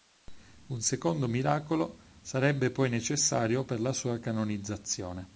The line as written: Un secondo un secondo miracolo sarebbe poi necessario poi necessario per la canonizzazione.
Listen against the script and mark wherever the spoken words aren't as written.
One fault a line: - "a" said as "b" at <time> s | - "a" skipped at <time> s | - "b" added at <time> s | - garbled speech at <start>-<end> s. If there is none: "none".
- "un secondo" skipped at 1.3 s
- "poi necessario" skipped at 3.6 s
- "sua" added at 3.9 s